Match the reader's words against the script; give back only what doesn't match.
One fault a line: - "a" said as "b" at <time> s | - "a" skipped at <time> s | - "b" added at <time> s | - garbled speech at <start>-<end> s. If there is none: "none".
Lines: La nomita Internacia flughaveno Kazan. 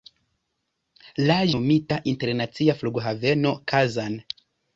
none